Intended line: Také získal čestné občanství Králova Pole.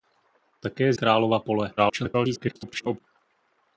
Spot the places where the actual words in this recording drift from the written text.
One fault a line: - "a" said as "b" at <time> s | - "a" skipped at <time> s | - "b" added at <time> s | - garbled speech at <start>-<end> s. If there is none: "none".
- "získal čestné občanství" skipped at 0.9 s
- garbled speech at 1.8-3.0 s